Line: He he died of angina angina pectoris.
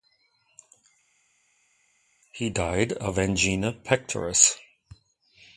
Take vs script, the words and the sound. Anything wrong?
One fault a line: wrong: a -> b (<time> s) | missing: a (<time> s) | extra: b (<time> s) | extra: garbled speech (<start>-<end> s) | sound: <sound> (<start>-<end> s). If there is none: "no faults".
missing: he (2.5 s)
missing: angina (3.7 s)